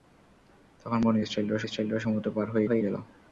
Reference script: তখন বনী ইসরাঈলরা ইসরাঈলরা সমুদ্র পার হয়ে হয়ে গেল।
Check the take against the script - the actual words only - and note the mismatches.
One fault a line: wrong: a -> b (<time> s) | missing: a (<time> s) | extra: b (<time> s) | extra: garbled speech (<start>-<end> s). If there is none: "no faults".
no faults